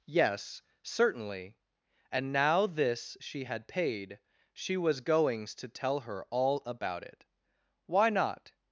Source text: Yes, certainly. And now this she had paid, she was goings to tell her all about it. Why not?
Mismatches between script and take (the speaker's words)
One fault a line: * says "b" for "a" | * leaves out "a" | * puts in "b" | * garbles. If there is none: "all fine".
all fine